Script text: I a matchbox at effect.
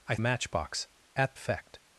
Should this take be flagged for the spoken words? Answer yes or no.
no